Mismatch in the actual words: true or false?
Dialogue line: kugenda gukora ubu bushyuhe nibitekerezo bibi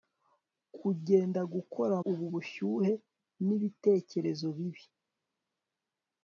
false